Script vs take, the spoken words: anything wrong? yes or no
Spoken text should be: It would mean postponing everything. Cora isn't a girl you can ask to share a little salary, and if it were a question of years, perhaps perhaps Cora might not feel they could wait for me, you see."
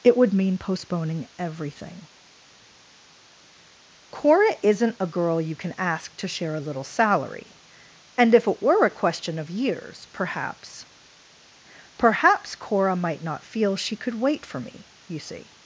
yes